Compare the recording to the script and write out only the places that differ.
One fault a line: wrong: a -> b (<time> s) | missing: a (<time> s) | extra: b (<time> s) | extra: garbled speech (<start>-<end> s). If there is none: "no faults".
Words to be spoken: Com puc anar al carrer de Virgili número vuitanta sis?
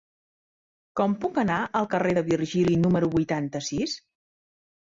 no faults